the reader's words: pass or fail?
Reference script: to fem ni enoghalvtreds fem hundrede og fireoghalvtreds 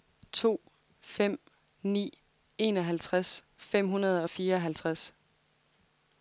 pass